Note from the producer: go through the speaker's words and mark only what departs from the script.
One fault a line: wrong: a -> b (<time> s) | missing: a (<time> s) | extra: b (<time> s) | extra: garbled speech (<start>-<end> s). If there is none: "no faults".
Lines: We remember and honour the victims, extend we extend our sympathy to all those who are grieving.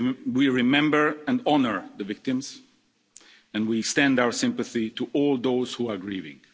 wrong: extend -> and (3.5 s)